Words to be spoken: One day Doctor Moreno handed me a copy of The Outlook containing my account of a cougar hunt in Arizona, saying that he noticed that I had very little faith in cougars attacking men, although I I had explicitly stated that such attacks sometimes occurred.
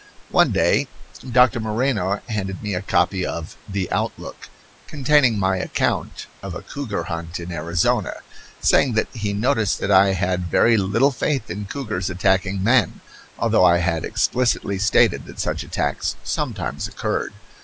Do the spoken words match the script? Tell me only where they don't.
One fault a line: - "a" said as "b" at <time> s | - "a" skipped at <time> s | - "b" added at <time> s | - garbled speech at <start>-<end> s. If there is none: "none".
- "I" skipped at 13.8 s